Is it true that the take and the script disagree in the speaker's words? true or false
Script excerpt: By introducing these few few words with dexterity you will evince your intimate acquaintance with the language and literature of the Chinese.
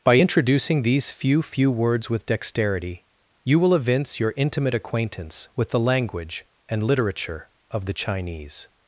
false